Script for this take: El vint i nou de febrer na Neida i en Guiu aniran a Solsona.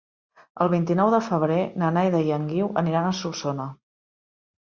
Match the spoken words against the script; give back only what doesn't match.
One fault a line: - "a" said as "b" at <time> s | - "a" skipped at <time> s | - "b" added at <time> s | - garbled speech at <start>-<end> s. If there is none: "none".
none